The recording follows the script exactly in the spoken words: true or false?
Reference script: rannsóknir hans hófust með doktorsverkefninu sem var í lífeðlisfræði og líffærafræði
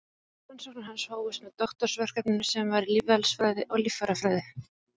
true